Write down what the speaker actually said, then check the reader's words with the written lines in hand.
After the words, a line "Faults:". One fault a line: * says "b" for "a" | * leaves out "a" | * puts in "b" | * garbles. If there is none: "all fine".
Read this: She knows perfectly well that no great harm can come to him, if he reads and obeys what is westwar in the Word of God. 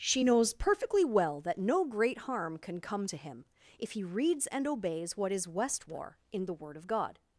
She knows perfectly well that no great harm can come to him, if he reads and obeys what is westwar in the Word of God.
Faults:
all fine